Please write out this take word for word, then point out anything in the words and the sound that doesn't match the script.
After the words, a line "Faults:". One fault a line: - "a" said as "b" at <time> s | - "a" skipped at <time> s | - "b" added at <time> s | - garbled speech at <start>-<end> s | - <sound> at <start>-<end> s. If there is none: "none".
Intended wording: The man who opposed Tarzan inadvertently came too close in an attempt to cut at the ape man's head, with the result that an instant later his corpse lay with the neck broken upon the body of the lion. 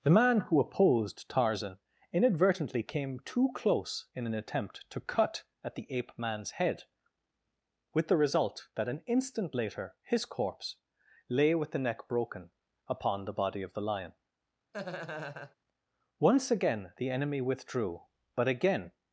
The man who opposed Tarzan inadvertently came too close in an attempt to cut at the ape man's head, with the result that an instant later his corpse lay with the neck broken upon the body of the lion. Once again the enemy withdrew, but again
Faults:
- laugh at 14.7-15.6 s
- "Once again the enemy withdrew but again" added at 16.2 s